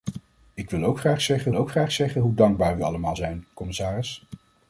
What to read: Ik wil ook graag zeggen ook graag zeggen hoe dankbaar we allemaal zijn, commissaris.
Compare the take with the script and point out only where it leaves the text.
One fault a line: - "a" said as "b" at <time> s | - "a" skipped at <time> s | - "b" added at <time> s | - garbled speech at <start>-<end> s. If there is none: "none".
none